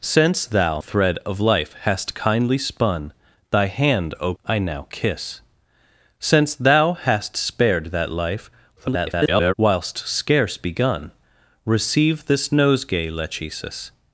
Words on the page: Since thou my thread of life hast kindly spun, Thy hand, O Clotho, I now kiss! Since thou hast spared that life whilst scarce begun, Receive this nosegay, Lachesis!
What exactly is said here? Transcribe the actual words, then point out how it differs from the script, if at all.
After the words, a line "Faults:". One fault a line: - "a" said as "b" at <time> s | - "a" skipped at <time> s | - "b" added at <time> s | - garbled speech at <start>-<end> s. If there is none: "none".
Since thou thread of life hast kindly spun, Thy hand, O I now kiss! Since thou hast spared that life [garbled] whilst scarce begun, Receive this nosegay, Lachesis!
Faults:
- "my" skipped at 0.8 s
- "Clotho" skipped at 4.3 s
- garbled speech at 8.8-9.5 s